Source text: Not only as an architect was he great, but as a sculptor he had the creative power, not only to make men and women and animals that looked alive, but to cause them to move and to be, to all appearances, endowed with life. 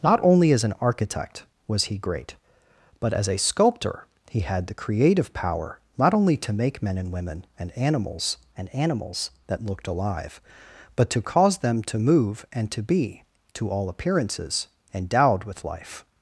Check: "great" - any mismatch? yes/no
no